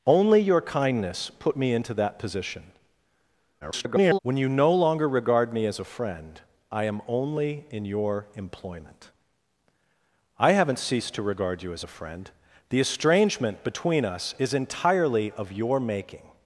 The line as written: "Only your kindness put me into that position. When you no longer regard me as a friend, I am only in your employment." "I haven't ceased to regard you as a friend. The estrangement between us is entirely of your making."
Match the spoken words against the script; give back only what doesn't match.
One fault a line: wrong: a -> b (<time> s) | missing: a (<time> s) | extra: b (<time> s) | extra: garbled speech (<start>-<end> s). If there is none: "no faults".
extra: garbled speech (3.6-4.2 s)